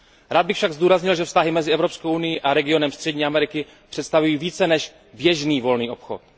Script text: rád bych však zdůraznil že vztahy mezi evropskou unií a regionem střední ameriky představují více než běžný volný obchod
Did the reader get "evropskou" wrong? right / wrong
right